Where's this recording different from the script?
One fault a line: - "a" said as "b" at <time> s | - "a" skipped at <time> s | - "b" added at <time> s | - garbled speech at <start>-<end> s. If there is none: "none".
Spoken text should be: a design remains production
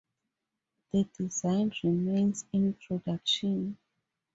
- "a" said as "the" at 0.9 s
- "in" added at 2.5 s